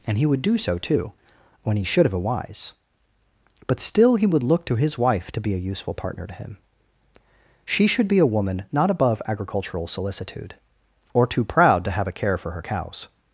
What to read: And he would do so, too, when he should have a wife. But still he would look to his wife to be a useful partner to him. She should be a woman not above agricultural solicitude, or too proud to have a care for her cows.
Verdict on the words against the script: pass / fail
fail